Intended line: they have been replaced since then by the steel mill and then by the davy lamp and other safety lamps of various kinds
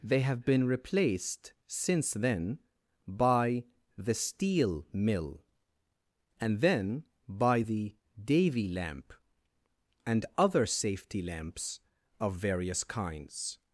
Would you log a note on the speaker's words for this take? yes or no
no